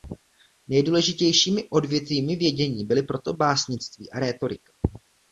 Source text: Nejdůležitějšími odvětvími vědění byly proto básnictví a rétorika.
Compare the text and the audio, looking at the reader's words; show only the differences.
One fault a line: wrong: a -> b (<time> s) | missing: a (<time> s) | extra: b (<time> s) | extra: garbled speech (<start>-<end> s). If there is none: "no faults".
no faults